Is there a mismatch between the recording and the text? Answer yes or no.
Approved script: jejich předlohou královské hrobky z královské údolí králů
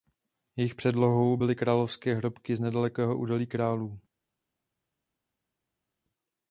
yes